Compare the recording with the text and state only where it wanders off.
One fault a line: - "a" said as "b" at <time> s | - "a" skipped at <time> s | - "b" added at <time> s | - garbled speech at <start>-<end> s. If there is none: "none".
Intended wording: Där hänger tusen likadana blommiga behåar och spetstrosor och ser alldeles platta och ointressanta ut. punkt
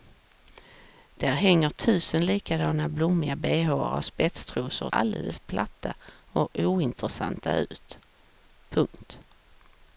- "ser" skipped at 4.9 s